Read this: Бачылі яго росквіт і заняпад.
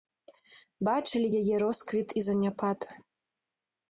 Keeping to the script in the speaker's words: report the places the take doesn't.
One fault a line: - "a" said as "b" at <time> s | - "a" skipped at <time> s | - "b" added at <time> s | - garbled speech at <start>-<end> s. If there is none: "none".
- "яго" said as "яе" at 1.4 s